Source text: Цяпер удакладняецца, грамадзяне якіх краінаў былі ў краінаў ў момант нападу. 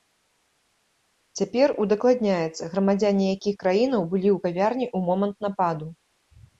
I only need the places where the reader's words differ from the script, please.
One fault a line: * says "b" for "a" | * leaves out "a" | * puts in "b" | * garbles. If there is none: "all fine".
* says "кавярні" for "краінаў"